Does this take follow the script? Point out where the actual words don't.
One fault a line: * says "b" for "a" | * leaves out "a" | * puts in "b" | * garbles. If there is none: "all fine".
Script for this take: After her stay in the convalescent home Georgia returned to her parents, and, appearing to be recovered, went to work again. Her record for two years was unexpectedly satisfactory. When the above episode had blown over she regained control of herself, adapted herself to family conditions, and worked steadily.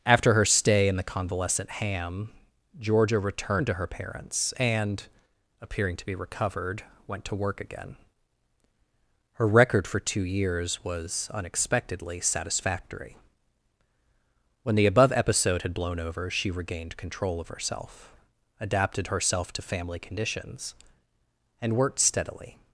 * says "ham" for "home"